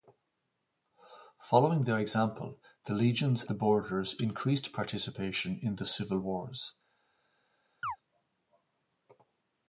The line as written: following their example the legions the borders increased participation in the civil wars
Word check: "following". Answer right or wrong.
right